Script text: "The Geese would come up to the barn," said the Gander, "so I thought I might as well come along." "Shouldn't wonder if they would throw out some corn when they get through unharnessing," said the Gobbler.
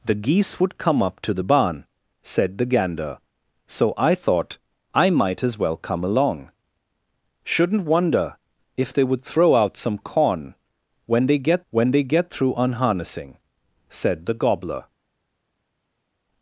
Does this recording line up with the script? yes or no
no